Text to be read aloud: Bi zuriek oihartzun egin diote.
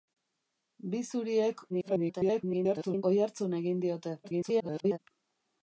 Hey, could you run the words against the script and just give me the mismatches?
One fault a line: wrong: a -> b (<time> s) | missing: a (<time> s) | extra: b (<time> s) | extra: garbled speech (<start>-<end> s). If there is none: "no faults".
extra: garbled speech (1.7-3.0 s)
extra: garbled speech (4.2-5.0 s)